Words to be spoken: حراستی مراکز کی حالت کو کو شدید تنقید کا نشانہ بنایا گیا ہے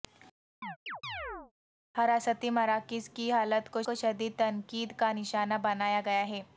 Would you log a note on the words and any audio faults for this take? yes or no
yes